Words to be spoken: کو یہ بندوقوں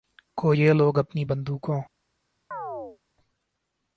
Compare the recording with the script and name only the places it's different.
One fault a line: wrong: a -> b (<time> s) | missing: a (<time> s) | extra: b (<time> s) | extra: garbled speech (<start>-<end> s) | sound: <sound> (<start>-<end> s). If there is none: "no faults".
extra: لوگ اپنی (0.7 s)
sound: chirp (2.5-3.0 s)